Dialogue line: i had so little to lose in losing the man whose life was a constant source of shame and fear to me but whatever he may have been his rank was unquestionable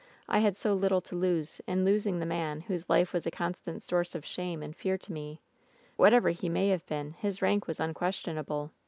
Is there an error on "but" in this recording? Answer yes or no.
yes